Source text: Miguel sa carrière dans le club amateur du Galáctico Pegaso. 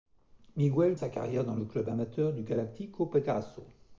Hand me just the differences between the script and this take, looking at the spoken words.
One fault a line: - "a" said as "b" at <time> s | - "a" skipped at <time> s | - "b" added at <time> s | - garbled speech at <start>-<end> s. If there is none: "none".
none